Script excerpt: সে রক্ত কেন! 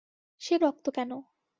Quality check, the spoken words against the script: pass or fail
pass